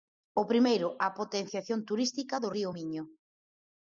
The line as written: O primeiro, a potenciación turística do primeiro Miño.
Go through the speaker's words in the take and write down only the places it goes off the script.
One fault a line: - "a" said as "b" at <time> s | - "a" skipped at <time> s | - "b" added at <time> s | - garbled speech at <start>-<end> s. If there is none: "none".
- "primeiro" said as "río" at 2.6 s